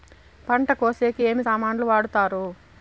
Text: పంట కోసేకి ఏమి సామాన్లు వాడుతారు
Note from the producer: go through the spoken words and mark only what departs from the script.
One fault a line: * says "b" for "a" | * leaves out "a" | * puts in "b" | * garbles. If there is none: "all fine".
all fine